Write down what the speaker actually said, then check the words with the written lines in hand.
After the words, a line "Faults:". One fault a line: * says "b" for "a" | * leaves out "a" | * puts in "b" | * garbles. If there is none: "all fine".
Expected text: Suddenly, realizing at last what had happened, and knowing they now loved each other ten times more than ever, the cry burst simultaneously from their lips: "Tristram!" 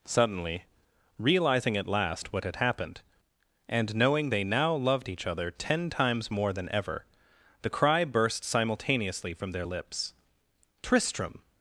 Suddenly, realizing at last what had happened, and knowing they now loved each other ten times more than ever, the cry burst simultaneously from their lips: "Tristram!"
Faults:
all fine